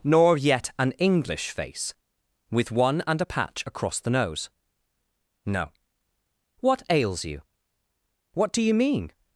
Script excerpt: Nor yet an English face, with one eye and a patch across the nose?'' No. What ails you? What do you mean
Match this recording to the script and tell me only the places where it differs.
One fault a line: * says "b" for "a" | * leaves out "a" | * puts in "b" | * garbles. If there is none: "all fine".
* leaves out "eye"